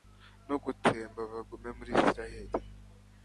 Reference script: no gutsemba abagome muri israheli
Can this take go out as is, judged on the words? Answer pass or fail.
pass